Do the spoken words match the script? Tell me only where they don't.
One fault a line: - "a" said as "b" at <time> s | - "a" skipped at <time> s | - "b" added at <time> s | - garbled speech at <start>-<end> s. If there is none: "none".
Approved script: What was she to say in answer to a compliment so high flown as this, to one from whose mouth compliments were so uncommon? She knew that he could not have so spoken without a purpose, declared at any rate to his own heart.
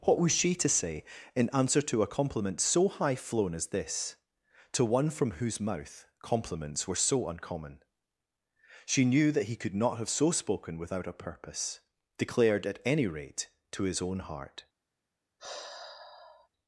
none